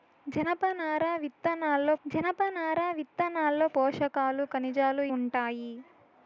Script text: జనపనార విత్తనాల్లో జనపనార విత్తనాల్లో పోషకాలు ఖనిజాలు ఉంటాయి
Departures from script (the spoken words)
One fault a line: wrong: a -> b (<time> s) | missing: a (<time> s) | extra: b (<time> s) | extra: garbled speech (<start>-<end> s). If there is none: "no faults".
no faults